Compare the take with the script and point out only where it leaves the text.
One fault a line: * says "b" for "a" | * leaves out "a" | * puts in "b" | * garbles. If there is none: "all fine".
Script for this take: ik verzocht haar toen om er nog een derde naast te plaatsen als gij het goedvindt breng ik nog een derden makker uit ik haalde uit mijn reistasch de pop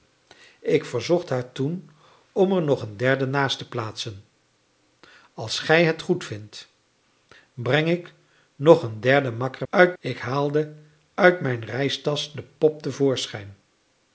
all fine